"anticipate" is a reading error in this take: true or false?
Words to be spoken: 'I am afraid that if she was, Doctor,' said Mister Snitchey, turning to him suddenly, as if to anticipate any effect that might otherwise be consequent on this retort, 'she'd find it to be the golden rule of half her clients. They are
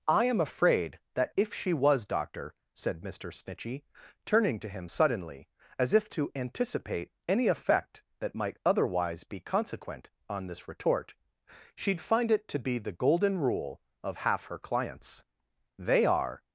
false